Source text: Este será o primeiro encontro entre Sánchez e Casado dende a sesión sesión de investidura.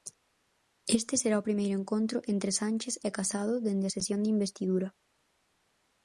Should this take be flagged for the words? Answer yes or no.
yes